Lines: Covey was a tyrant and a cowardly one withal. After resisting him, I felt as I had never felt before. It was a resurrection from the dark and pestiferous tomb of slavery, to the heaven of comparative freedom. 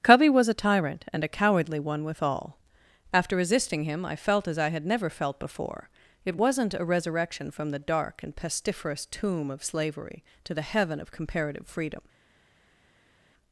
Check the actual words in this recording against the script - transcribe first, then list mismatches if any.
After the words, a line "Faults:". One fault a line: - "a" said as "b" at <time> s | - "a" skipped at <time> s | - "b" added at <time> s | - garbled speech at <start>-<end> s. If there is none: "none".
Covey was a tyrant and a cowardly one withal. After resisting him, I felt as I had never felt before. It wasn't a resurrection from the dark and pestiferous tomb of slavery, to the heaven of comparative freedom.
Faults:
- "was" said as "wasn't" at 6.3 s